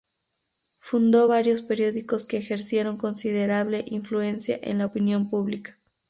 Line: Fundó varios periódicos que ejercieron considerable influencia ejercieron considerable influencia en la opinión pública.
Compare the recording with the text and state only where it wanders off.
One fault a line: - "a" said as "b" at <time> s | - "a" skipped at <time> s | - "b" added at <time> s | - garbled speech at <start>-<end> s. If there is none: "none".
- "ejercieron considerable influencia" skipped at 4.6 s